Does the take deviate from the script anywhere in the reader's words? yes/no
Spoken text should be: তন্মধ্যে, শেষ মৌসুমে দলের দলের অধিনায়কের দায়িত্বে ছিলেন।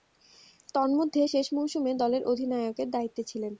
yes